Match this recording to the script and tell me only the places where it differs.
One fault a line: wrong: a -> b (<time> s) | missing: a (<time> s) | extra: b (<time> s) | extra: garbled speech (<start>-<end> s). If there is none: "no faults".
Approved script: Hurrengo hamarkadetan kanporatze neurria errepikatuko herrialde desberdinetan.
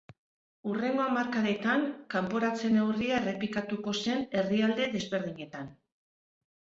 extra: zen (4.1 s)